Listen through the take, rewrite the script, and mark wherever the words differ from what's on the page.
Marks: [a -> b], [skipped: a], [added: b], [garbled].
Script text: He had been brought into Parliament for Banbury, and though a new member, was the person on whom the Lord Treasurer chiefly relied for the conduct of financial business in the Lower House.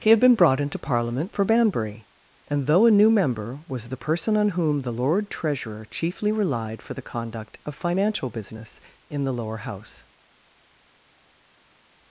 He had been brought into Parliament for Banbury, and though a new member, was the person on whom the Lord Treasurer chiefly relied for the conduct of financial business in the Lower House.